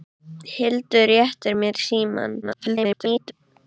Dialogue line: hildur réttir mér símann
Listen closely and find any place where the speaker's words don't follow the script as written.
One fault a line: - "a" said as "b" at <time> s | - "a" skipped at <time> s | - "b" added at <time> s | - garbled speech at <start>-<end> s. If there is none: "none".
- garbled speech at 2.4-3.3 s